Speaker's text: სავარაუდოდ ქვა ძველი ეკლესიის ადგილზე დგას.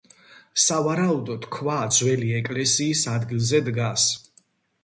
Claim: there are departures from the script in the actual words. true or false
false